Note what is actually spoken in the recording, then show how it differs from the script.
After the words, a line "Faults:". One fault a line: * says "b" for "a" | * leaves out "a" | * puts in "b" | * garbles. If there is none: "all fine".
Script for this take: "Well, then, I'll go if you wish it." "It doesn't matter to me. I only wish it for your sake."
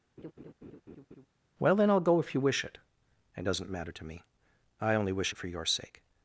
"Well, then, I'll go if you wish it." "It doesn't matter to me. I only wish it for your sake."
Faults:
all fine